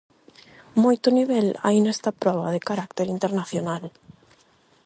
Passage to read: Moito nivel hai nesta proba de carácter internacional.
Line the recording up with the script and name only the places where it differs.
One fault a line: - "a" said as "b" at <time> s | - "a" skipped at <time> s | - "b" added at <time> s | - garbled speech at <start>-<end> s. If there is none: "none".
none